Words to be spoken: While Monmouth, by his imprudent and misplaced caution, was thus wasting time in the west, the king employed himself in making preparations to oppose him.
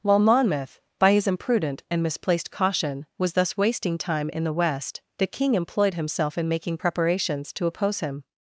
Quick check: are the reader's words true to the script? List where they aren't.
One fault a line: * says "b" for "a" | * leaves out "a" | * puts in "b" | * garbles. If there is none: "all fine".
all fine